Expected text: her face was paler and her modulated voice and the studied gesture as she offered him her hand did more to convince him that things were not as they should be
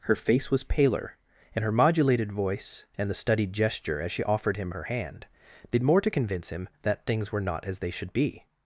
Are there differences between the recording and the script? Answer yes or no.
no